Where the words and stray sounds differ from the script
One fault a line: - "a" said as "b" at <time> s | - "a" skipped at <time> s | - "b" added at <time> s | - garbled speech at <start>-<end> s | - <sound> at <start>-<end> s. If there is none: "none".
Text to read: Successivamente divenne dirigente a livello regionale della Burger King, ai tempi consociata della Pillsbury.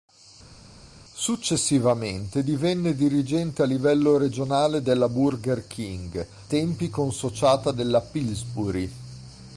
- "ai" skipped at 6.3 s